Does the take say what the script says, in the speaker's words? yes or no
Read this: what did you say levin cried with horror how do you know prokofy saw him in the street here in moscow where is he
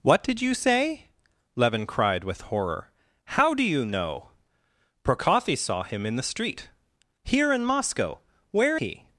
no